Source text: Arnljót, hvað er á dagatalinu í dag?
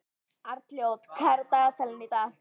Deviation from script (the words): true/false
false